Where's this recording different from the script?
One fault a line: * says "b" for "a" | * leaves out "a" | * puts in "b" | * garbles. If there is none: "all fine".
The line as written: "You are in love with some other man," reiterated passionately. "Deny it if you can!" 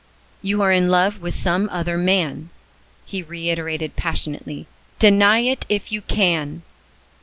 * puts in "he"